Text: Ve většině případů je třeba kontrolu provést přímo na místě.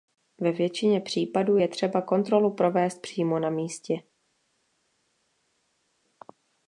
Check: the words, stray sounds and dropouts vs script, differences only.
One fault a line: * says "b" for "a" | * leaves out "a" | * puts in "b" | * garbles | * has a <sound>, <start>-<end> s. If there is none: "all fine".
all fine